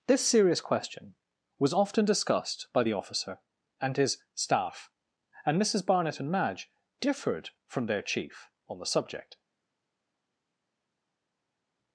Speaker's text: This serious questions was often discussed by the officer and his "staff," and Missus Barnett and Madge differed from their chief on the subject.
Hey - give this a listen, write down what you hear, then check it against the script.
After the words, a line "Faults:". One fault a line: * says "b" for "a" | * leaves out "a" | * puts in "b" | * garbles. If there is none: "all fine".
This serious question was often discussed by the officer and his "staff," and Missus Barnett and Madge differed from their chief on the subject.
Faults:
* says "question" for "questions"